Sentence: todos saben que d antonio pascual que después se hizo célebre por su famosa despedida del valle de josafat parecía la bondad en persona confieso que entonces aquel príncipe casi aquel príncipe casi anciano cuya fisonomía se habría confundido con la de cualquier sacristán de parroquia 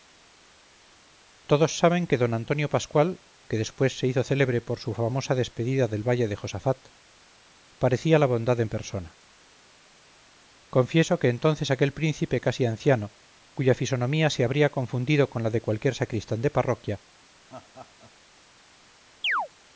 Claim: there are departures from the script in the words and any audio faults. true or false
true